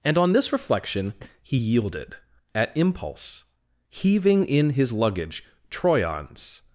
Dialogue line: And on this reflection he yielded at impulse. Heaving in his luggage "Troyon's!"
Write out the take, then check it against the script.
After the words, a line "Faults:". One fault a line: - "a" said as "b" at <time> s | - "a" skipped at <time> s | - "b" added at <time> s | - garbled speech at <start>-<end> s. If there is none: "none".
And on this reflection he yielded at impulse. Heaving in his luggage "Troyon's!"
Faults:
none